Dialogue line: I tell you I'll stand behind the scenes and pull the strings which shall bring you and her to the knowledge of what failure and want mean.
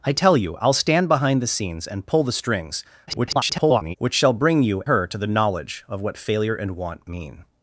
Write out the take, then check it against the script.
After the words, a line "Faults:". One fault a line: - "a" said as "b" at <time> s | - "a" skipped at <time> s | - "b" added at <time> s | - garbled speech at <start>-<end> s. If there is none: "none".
I tell you I'll stand behind the scenes and pull the strings [garbled] which shall bring you her to the knowledge of what failure and want mean.
Faults:
- garbled speech at 3.1-4.0 s
- "and" skipped at 4.8 s